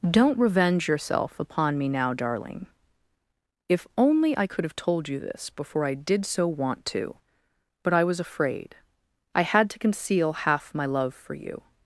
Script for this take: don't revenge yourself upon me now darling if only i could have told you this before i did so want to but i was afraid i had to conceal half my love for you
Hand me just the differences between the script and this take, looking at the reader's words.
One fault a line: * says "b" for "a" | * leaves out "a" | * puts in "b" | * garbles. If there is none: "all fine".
all fine